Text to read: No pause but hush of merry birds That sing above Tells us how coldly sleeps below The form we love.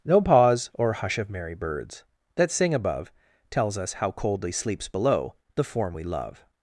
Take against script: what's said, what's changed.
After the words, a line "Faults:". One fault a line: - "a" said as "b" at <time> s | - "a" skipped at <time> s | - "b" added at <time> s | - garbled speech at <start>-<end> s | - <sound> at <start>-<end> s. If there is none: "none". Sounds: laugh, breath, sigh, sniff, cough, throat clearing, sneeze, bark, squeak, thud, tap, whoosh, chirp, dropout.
No pause or hush of merry birds That sing above Tells us how coldly sleeps below The form we love.
Faults:
- "but" said as "or" at 0.7 s